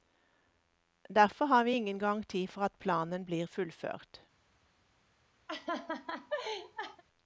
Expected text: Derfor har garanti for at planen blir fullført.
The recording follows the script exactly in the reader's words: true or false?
false